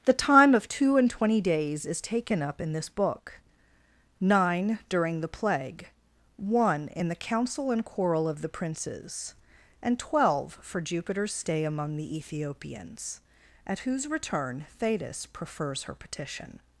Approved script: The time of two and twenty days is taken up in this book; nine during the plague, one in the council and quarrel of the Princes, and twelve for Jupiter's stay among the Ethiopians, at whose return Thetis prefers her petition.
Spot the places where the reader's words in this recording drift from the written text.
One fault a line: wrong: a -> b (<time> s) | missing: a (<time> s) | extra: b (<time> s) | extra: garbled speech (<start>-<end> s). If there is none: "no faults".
no faults